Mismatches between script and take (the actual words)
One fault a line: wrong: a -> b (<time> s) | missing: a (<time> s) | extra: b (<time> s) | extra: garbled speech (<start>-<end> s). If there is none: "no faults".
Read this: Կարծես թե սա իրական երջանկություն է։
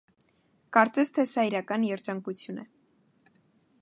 no faults